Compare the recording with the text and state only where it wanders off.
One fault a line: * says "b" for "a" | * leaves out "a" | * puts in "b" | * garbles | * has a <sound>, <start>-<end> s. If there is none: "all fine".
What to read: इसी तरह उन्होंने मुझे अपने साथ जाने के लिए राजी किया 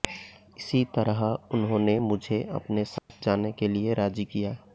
* has a dropout, 3.0-3.1 s